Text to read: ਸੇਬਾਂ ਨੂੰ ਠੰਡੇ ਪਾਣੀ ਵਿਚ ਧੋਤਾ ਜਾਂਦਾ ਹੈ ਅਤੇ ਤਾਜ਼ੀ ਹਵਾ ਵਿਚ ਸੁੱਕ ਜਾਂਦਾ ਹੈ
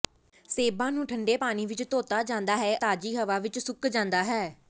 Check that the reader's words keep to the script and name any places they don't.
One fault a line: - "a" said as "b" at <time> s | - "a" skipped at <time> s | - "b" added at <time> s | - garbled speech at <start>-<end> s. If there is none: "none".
- "ਅਤੇ" skipped at 2.7 s